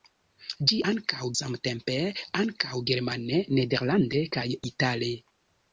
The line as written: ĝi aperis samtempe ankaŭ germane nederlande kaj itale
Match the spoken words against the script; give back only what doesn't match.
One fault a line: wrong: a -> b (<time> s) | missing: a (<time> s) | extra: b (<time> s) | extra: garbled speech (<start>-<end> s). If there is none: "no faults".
wrong: aperis -> ankaŭ (0.9 s)